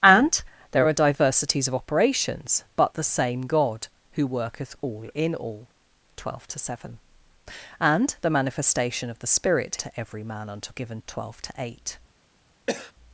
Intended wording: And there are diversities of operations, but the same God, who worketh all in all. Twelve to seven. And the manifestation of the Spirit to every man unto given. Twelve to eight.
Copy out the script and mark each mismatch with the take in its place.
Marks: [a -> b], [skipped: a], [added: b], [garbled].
And there are diversities of operations, but the same God, who worketh all in all. Twelve to seven. And the manifestation of the Spirit to every man unto given. Twelve to eight.